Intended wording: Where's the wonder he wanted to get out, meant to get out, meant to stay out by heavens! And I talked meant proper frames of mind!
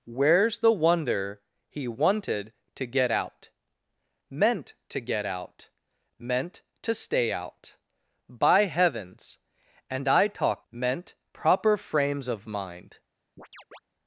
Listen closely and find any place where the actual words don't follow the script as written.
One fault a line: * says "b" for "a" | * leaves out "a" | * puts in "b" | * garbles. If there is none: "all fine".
all fine